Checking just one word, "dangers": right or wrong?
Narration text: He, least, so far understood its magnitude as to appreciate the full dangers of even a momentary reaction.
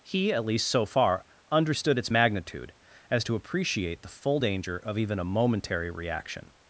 wrong